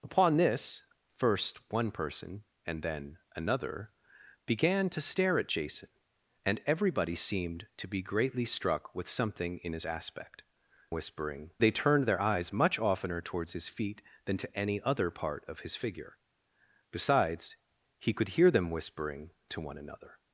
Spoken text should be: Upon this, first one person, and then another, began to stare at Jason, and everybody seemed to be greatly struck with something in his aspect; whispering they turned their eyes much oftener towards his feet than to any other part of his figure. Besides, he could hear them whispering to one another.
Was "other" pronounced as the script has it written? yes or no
yes